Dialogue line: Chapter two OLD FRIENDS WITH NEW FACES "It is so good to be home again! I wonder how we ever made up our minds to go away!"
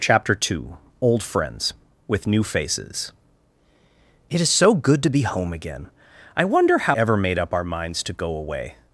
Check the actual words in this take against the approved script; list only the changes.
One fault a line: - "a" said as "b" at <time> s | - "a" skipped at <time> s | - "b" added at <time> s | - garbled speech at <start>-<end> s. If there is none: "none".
- "we" skipped at 7.0 s